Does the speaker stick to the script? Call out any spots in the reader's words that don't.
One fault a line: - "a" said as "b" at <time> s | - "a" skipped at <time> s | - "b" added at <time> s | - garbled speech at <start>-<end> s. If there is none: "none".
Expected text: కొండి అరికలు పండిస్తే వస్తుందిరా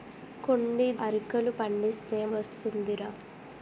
none